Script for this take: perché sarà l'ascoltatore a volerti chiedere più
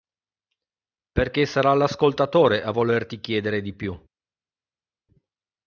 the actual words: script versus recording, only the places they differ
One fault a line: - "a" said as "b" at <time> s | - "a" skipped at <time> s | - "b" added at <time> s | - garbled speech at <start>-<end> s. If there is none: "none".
- "di" added at 3.6 s